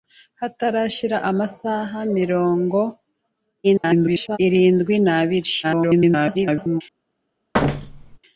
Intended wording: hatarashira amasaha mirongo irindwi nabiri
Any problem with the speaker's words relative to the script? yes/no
yes